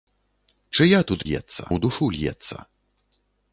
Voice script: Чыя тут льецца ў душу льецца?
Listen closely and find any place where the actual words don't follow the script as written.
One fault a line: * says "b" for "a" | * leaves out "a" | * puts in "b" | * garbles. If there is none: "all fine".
all fine